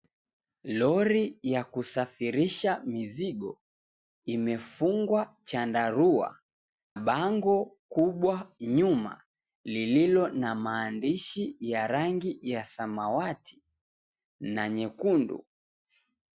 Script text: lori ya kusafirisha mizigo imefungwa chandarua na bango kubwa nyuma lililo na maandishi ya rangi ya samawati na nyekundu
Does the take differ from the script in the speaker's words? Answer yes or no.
yes